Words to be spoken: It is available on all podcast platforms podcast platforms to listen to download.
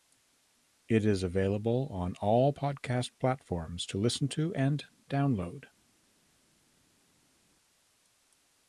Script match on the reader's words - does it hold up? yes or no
no